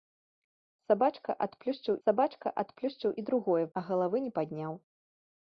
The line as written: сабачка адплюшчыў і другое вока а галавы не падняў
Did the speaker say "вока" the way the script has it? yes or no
no